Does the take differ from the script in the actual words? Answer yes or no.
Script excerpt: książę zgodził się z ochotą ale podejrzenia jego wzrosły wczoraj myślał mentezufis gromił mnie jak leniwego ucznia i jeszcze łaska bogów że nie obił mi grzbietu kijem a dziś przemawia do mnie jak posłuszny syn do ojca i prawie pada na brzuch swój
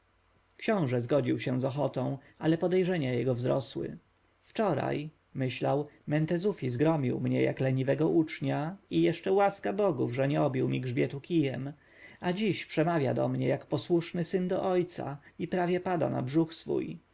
no